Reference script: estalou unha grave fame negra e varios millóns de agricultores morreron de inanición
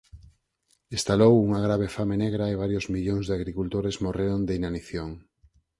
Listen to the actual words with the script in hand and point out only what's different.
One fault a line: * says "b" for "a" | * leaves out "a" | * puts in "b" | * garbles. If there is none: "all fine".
all fine